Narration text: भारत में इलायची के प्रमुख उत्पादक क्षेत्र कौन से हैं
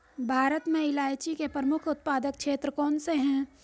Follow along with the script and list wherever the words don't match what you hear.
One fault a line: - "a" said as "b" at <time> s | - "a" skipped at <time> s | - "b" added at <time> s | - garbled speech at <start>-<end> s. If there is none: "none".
none